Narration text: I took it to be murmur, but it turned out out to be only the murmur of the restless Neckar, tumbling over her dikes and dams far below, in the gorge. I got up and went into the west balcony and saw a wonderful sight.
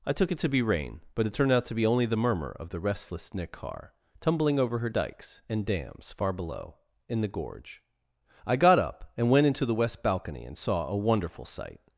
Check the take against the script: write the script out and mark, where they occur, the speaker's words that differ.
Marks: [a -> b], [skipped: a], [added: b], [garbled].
I took it to be [murmur, -> rain] but it turned out [skipped: out] to be only the murmur of the restless Neckar, tumbling over her dikes and dams far below, in the gorge. I got up and went into the west balcony and saw a wonderful sight.